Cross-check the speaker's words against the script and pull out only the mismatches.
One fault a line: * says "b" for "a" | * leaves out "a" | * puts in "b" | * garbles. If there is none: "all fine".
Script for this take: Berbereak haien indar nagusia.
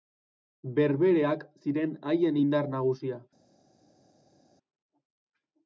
* puts in "ziren"